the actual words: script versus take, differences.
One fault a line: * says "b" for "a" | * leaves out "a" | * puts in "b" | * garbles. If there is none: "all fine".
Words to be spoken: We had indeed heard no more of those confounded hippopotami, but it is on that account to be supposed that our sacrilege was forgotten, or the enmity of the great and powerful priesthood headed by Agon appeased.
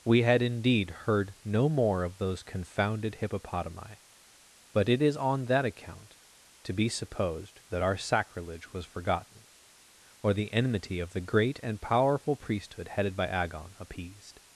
all fine